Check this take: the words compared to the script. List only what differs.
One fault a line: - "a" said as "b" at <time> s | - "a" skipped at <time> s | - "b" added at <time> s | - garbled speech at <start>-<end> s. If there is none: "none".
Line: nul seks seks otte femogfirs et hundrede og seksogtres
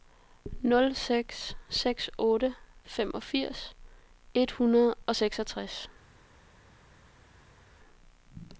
none